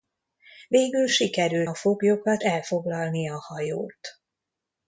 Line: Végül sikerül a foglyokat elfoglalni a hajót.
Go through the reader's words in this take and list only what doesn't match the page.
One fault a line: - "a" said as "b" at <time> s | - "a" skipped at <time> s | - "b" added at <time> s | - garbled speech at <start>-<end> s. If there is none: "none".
none